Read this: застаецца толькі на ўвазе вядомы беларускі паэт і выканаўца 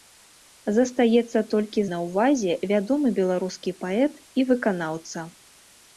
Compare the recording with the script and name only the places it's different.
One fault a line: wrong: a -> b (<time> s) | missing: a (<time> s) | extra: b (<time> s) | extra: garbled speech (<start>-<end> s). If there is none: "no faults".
no faults